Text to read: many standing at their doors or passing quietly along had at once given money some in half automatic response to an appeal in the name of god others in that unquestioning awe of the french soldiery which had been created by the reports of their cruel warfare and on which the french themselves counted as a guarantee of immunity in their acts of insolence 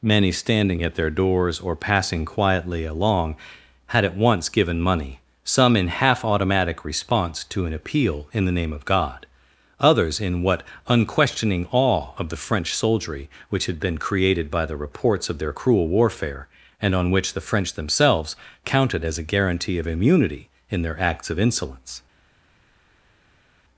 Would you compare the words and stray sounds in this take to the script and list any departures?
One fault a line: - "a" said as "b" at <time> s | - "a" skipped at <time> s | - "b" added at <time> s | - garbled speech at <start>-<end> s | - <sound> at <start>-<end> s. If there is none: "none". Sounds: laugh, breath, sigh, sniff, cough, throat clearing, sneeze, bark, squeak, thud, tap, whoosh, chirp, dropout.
- "that" said as "what" at 10.4 s